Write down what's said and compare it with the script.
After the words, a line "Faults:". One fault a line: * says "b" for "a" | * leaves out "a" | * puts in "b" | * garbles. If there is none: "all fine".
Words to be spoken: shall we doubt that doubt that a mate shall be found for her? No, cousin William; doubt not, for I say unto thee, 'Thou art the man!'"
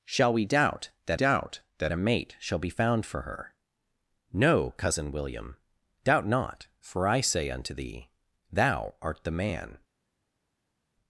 shall we doubt that doubt that a mate shall be found for her? No, cousin William; doubt not, for I say unto thee, 'Thou art the man!'"
Faults:
all fine